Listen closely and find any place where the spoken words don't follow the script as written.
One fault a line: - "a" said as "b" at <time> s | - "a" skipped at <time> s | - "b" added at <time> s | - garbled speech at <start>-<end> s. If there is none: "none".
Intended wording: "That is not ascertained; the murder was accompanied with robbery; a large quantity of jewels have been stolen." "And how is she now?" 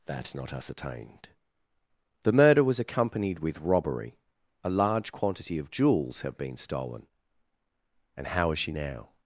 - "is" skipped at 0.3 s